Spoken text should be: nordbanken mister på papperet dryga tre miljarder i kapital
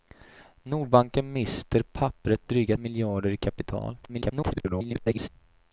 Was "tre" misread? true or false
true